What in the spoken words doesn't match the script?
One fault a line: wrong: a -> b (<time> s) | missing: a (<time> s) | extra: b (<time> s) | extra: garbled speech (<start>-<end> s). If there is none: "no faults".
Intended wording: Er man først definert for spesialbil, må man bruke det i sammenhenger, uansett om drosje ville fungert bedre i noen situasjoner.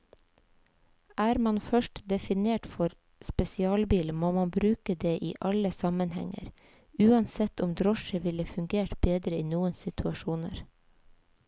extra: alle (5.5 s)